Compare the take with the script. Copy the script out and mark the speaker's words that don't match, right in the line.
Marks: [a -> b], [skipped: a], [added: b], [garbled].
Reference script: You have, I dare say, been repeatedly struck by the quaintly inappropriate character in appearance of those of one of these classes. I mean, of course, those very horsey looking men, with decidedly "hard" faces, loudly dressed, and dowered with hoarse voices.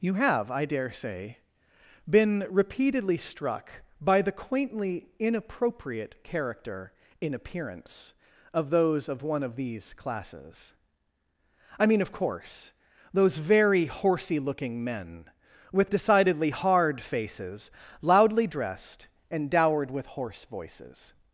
You have, I dare say, been repeatedly struck by the quaintly inappropriate character in appearance of those of one of these classes. I mean, of course, those very horsey looking men, with decidedly "hard" faces, loudly dressed, and dowered with hoarse voices.